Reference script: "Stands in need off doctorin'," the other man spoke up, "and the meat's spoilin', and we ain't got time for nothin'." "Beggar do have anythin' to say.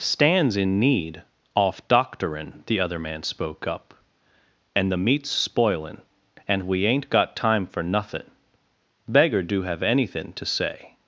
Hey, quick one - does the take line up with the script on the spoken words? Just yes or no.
yes